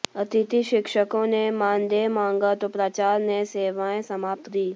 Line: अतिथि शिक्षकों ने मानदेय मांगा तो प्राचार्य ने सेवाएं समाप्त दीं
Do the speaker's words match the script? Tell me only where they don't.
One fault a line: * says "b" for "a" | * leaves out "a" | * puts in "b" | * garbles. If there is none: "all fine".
all fine